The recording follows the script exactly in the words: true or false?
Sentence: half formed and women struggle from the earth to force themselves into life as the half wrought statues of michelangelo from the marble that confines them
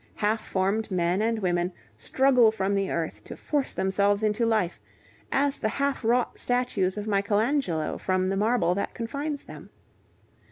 false